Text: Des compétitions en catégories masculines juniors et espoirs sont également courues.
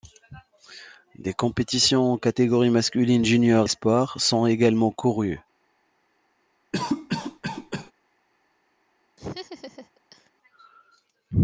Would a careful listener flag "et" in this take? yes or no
yes